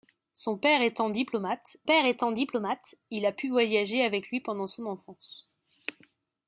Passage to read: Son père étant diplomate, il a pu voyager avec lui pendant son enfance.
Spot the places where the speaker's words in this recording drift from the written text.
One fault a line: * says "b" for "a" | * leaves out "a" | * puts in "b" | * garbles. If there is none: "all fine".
* puts in "père étant diplomate"